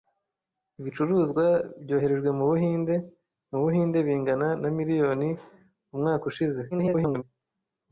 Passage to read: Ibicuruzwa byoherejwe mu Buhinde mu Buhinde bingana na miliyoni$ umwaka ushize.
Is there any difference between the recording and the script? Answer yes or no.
yes